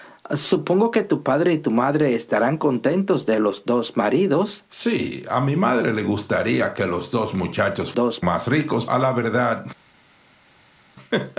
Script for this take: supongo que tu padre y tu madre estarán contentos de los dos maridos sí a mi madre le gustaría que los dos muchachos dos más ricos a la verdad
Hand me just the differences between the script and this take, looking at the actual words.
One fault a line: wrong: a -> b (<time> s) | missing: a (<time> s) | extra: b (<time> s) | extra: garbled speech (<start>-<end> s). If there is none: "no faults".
no faults